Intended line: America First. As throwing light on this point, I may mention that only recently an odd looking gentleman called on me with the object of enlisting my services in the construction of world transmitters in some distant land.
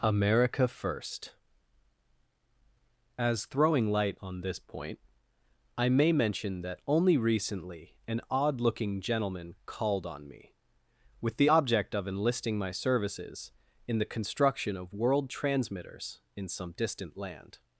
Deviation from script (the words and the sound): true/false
false